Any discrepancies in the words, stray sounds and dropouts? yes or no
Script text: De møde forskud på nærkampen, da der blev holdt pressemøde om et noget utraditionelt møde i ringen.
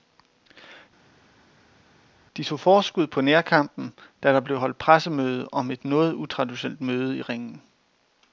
yes